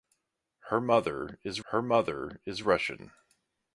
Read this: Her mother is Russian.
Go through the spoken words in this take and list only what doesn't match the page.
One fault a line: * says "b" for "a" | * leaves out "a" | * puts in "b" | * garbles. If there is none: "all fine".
* puts in "her mother is"